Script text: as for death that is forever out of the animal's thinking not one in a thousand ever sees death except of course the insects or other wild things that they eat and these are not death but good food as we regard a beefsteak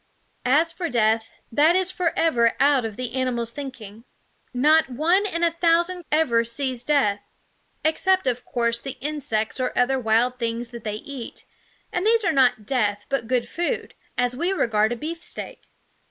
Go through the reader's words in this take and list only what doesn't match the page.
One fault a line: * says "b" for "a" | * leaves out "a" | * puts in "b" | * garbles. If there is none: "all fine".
all fine